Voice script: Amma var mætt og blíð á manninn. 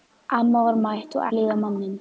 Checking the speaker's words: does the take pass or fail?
pass